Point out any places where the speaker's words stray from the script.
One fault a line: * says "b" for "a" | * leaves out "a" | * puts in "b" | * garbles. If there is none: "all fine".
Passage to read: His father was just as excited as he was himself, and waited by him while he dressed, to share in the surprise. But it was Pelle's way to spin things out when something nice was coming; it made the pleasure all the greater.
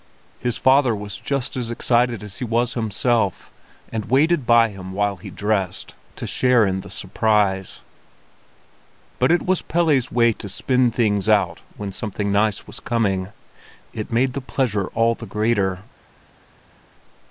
all fine